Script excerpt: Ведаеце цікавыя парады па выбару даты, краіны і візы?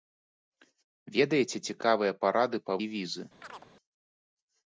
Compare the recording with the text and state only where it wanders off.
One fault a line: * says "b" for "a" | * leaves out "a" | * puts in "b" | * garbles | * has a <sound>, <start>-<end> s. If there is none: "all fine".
* leaves out "выбару даты краіны"
* has a chirp, 3.4-3.7 s